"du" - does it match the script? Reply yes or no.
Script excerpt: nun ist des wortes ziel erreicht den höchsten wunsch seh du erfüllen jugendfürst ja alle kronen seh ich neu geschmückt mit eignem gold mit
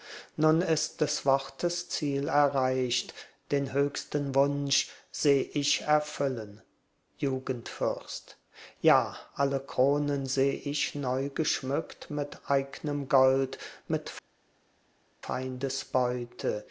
no